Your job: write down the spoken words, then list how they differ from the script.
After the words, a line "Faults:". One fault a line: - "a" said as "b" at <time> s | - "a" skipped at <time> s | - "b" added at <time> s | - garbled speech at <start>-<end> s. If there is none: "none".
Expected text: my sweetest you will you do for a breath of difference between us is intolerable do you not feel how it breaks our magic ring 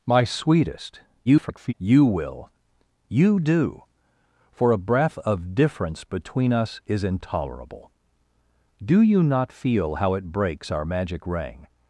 my sweetest [garbled] you will you do for a breath of difference between us is intolerable do you not feel how it breaks our magic ring
Faults:
- garbled speech at 1.2-1.7 s